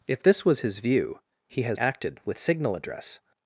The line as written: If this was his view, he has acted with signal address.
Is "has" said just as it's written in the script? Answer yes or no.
yes